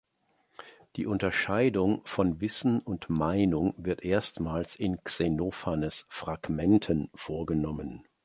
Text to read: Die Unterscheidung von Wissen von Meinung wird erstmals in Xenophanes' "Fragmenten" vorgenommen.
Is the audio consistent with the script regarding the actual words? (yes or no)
no